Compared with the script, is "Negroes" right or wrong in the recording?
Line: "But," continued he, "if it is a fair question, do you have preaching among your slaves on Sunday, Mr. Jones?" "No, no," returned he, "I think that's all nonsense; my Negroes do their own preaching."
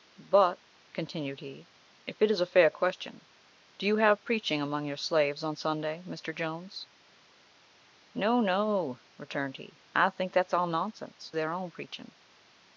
wrong